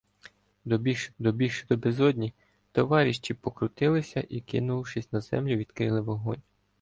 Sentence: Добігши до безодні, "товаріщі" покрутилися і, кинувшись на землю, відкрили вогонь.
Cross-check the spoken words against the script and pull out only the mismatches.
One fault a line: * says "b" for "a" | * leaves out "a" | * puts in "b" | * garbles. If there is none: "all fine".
* puts in "добігши"